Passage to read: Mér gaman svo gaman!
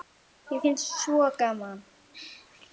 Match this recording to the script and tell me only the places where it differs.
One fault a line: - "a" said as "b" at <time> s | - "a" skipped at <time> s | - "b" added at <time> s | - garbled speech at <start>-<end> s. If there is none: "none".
- "gaman" said as "finnst" at 0.6 s